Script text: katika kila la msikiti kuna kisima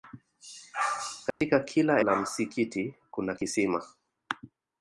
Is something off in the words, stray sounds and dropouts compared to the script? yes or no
yes